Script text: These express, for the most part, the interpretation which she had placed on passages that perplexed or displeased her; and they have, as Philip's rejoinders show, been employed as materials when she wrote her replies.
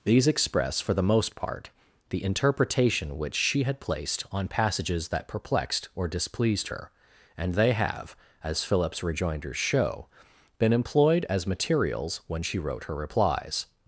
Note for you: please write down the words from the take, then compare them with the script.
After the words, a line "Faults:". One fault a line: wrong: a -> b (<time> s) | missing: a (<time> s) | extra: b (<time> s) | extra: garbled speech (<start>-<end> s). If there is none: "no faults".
These express, for the most part, the interpretation which she had placed on passages that perplexed or displeased her; and they have, as Philip's rejoinders show, been employed as materials when she wrote her replies.
Faults:
no faults